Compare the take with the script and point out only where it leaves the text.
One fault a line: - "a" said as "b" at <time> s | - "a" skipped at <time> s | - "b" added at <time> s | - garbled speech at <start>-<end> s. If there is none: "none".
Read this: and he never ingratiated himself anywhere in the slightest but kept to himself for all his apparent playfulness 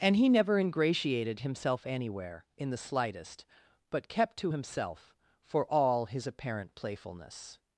none